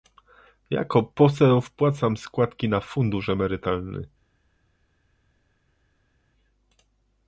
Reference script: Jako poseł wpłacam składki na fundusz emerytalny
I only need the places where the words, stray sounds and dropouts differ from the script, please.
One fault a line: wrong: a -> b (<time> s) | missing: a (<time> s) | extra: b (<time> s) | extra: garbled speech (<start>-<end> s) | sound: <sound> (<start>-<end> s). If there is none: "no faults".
no faults